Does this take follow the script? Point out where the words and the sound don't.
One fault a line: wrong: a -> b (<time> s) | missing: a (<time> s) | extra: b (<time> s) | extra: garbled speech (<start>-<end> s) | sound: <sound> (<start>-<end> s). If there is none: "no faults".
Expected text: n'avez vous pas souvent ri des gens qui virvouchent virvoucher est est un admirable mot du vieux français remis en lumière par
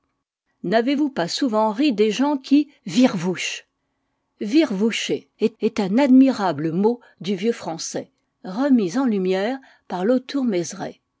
no faults